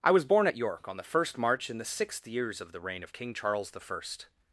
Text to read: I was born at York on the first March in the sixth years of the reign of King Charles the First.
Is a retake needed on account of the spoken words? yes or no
no